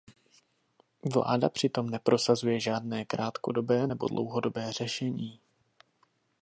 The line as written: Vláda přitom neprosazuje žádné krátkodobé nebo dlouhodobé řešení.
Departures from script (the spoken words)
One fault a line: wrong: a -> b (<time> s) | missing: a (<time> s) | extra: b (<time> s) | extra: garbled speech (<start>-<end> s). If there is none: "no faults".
no faults